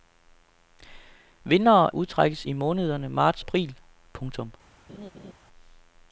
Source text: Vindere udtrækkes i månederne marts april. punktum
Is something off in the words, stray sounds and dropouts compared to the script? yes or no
yes